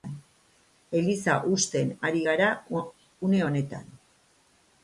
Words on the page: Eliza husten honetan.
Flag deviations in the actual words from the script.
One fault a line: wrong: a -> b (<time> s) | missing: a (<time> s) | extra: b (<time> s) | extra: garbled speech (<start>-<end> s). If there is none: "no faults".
extra: ari gara une (2.1 s)